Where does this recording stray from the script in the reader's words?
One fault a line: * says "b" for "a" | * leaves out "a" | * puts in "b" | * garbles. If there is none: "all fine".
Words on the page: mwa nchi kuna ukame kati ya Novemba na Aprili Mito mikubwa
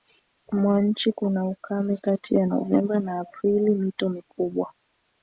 all fine